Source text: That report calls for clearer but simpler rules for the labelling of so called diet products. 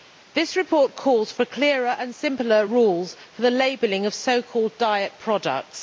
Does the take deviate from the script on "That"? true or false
true